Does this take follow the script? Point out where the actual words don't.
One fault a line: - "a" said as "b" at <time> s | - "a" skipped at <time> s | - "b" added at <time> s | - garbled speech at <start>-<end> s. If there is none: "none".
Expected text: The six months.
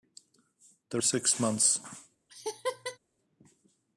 none